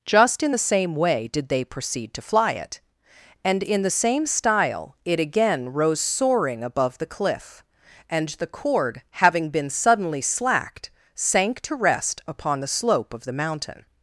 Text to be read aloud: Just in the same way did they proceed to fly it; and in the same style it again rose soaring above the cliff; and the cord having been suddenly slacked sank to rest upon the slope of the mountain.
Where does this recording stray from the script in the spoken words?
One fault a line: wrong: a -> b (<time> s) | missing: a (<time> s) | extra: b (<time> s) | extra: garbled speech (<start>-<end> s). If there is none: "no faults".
no faults